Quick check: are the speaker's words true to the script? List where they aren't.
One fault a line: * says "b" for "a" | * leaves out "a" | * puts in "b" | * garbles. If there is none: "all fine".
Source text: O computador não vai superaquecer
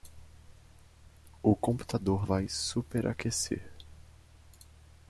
* leaves out "não"